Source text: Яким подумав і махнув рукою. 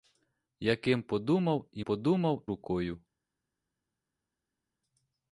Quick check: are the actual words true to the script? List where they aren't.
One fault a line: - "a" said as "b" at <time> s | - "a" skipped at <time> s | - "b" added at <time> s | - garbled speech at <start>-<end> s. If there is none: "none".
- "махнув" said as "подумав" at 1.8 s